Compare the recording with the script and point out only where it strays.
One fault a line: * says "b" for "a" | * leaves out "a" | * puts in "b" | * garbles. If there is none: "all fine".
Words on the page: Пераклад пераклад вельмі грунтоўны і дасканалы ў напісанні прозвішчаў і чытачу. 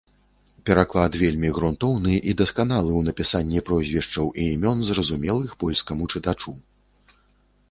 * leaves out "пераклад"
* puts in "імён зразумелых польскаму"